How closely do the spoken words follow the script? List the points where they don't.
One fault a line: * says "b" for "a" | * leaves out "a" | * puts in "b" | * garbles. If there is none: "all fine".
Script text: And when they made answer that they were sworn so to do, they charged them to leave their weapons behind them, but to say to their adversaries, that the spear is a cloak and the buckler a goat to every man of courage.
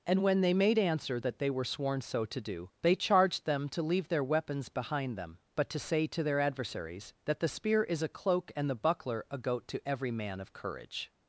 all fine